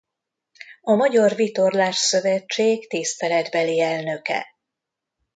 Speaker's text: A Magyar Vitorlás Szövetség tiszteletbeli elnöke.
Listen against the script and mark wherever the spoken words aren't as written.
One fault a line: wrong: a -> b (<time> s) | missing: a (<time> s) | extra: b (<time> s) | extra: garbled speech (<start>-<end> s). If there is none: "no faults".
no faults